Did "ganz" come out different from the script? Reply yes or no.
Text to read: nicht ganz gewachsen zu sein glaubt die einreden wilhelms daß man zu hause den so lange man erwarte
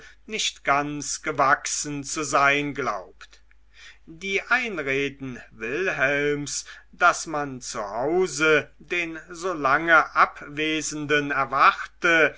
no